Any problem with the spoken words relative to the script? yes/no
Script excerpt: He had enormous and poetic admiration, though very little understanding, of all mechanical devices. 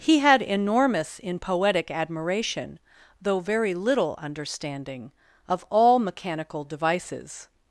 yes